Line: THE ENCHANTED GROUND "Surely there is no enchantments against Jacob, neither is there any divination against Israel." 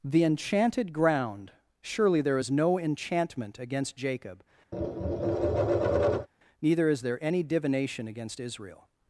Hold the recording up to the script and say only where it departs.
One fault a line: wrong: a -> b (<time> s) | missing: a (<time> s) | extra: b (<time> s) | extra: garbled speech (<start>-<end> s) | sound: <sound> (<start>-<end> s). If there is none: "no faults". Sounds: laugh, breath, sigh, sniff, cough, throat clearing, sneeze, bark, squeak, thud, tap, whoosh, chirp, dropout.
wrong: enchantments -> enchantment (2.8 s)
sound: tap (4.7-6.3 s)